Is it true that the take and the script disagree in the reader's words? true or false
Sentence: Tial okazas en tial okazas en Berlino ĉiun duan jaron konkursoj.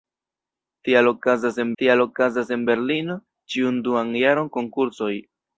false